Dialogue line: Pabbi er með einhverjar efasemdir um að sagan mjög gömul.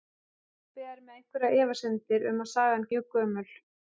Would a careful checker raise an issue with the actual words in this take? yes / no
no